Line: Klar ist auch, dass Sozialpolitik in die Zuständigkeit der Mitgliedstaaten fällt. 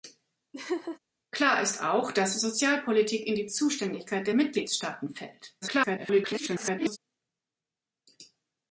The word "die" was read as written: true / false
true